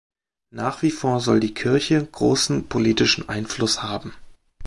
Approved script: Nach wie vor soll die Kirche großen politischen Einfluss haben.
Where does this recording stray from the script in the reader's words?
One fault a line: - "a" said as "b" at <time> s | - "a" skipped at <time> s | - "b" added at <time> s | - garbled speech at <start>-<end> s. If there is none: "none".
none